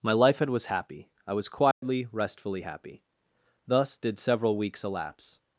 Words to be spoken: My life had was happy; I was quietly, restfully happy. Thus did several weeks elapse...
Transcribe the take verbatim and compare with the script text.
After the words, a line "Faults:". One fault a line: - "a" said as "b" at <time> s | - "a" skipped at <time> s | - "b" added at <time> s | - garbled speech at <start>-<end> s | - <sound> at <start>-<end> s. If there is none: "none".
My life had was happy; I was quietly, restfully happy. Thus did several weeks elapse...
Faults:
- dropout at 1.7-1.8 s